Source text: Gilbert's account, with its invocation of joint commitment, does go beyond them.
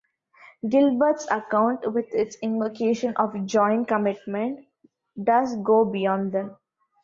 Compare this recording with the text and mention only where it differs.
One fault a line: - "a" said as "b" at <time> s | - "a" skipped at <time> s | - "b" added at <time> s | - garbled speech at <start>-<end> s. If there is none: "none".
none